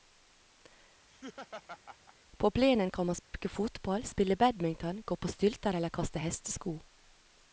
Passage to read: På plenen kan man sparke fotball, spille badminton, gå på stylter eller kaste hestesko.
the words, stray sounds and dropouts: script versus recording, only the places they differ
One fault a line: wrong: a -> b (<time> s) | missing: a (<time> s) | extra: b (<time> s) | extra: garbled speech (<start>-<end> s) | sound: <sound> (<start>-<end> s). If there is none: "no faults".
sound: laugh (1.1-2.2 s)
sound: dropout (3.2-3.3 s)